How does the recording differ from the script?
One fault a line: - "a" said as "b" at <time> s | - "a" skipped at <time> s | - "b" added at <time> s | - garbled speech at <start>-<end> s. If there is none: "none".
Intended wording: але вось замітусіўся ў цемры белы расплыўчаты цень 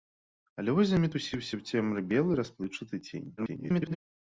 - garbled speech at 3.4-4.0 s